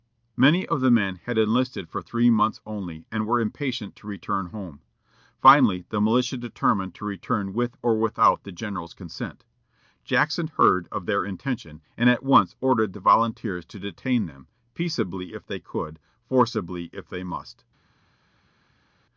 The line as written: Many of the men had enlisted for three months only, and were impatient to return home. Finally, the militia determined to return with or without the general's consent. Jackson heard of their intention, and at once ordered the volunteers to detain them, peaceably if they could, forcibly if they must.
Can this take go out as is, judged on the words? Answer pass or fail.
pass